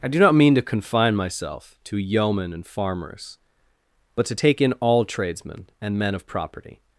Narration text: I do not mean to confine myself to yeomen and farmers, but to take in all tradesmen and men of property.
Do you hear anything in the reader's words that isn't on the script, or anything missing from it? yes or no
no